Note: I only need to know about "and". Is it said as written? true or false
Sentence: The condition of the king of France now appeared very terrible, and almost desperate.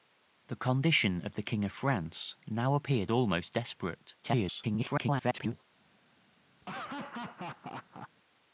false